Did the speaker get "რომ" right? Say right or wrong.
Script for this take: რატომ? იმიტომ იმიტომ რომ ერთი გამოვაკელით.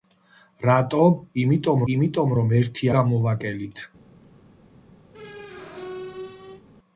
right